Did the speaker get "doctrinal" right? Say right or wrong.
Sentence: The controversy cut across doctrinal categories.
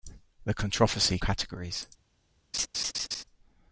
wrong